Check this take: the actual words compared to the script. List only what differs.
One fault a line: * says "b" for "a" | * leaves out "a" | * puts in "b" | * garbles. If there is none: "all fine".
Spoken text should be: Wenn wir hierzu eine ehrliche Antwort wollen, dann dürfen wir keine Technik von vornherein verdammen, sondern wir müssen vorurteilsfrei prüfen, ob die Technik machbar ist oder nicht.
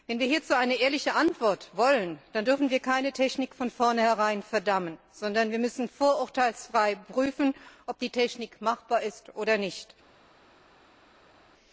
all fine